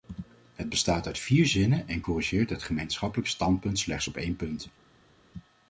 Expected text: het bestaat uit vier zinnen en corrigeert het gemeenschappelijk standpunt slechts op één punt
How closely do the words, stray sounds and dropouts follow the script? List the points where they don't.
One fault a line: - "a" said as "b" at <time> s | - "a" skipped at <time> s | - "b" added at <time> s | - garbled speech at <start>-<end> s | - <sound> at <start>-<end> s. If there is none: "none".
none